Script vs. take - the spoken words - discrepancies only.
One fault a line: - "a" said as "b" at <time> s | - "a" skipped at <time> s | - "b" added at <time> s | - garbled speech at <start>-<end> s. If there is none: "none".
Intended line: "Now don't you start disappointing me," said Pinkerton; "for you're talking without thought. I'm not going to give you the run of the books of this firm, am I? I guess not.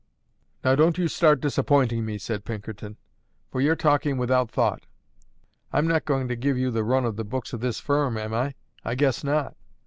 none